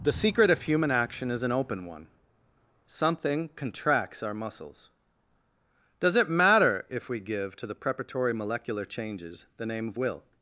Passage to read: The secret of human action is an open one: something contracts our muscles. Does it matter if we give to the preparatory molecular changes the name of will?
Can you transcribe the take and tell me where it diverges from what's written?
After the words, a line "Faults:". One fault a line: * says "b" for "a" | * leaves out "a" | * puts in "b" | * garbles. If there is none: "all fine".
The secret of human action is an open one: something contracts our muscles. Does it matter if we give to the preparatory molecular changes the name of will?
Faults:
all fine